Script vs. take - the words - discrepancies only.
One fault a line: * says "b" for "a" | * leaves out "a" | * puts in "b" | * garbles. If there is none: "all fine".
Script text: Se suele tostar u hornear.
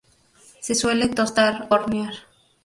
* leaves out "u"